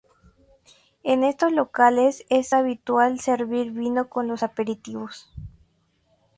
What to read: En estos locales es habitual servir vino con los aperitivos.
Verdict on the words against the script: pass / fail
pass